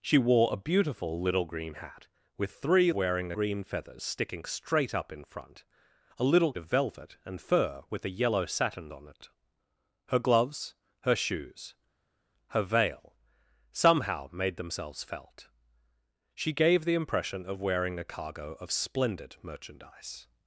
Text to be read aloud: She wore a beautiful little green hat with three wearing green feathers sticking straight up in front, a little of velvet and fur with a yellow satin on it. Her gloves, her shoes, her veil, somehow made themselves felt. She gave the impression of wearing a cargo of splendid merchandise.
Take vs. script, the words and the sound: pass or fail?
pass